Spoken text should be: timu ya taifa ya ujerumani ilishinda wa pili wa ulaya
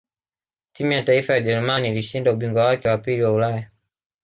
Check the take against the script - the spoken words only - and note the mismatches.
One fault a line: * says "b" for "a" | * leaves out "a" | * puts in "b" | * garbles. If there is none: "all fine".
* puts in "ubingwa wake"